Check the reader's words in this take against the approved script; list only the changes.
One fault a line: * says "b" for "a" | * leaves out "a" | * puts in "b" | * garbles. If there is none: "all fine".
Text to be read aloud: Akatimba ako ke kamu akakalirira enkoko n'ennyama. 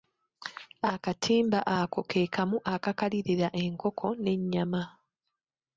all fine